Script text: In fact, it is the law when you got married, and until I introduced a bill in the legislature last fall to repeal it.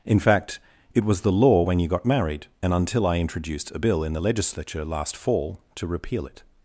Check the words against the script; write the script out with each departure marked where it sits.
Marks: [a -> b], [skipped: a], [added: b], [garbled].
In fact, it [is -> was] the law when you got married, and until I introduced a bill in the legislature last fall to repeal it.